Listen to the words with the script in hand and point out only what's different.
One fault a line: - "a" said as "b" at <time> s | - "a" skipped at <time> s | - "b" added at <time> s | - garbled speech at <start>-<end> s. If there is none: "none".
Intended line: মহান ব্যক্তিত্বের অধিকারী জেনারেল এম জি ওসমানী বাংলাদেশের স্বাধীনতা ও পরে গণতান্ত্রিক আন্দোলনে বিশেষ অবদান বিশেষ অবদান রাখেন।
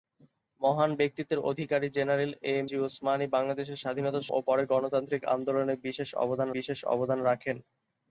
none